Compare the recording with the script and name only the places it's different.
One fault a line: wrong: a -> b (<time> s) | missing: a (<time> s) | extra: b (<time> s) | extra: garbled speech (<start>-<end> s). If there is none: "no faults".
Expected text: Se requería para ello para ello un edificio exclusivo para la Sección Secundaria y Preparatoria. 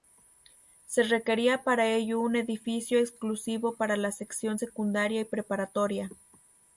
missing: para ello (2.2 s)